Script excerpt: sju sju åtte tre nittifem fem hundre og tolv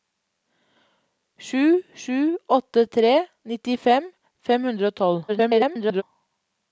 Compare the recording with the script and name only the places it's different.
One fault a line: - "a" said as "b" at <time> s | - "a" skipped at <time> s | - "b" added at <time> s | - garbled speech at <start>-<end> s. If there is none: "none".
- garbled speech at 5.3-6.0 s